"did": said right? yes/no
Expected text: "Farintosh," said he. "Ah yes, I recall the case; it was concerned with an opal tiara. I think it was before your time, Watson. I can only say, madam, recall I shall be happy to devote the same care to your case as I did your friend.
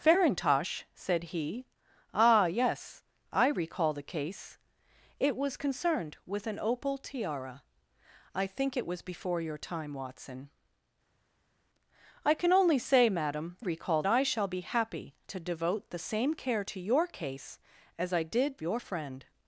yes